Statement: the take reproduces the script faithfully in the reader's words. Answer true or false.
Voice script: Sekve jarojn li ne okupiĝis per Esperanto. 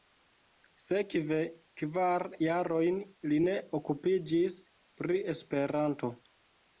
false